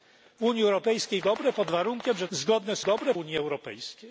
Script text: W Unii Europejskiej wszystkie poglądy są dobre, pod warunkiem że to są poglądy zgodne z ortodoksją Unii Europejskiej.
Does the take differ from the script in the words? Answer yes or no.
yes